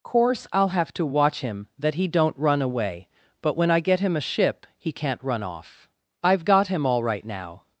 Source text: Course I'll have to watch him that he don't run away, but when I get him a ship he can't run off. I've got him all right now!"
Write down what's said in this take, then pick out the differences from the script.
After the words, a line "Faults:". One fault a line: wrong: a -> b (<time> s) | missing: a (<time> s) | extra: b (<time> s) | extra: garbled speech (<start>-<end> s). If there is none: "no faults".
Course I'll have to watch him that he don't run away, but when I get him a ship he can't run off. I've got him all right now!"
Faults:
no faults